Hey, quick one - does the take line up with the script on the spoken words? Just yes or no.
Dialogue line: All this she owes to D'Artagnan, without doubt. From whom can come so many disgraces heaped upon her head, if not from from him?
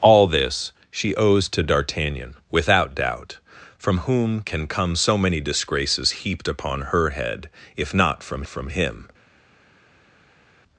yes